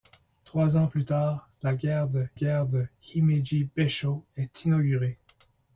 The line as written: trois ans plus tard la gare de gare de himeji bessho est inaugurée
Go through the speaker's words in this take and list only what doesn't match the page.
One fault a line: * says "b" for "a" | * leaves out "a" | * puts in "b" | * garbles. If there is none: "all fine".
all fine